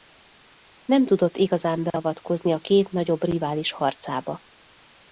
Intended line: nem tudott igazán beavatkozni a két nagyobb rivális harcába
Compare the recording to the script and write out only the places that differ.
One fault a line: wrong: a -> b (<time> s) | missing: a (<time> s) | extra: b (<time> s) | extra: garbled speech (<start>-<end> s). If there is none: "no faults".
no faults